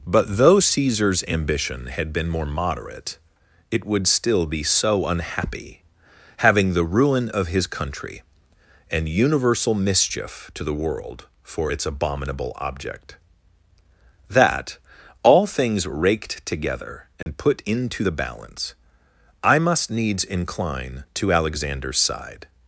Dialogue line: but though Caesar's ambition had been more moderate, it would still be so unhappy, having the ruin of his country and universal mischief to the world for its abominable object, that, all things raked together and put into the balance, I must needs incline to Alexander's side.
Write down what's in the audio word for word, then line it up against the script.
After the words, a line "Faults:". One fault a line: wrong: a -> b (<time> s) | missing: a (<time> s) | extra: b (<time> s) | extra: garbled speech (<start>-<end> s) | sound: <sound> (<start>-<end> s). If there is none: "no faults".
but though Caesar's ambition had been more moderate, it would still be so unhappy, having the ruin of his country and universal mischief to the world for its abominable object, that, all things raked together and put into the balance, I must needs incline to Alexander's side.
Faults:
sound: dropout (17.2-17.3 s)